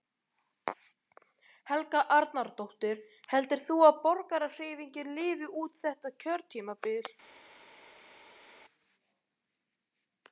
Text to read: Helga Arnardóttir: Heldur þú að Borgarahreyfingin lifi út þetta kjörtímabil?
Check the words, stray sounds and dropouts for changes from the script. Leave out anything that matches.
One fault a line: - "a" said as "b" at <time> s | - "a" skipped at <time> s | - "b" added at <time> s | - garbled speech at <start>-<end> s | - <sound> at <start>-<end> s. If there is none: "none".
none